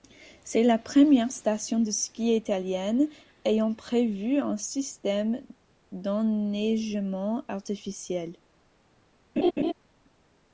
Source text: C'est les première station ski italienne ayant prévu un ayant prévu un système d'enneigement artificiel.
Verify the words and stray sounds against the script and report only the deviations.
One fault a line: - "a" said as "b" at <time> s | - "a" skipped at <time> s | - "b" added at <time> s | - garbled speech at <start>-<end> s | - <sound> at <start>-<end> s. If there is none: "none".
- "les" said as "la" at 0.6 s
- "de" added at 1.8 s
- "ayant prévu un" skipped at 4.6 s
- laugh at 9.4-9.7 s